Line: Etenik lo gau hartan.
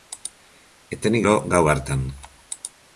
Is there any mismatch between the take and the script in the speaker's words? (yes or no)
no